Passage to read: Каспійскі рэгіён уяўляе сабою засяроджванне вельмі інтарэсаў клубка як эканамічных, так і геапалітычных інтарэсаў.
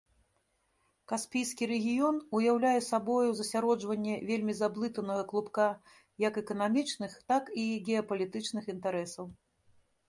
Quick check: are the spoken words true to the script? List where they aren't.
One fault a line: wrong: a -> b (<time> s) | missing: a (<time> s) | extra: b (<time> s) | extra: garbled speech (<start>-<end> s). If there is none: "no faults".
wrong: інтарэсаў -> заблытанага (4.6 s)